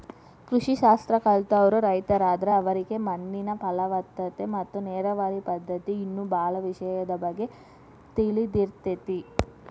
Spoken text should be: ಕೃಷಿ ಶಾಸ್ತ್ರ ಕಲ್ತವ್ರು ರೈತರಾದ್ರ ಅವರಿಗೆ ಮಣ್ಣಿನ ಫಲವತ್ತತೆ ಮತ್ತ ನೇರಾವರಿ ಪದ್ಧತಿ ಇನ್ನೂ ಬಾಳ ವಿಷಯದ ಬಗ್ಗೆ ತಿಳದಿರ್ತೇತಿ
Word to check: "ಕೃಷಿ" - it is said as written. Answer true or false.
true